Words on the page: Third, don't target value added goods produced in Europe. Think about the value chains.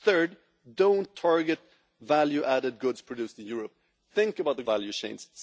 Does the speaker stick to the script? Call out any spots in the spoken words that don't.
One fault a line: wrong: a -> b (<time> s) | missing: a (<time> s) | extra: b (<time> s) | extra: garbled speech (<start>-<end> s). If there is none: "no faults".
no faults